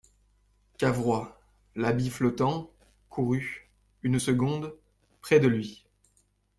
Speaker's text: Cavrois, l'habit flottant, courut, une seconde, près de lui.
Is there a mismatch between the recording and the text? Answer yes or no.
no